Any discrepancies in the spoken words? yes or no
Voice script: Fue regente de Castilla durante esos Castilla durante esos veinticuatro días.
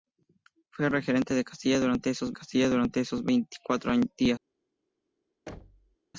no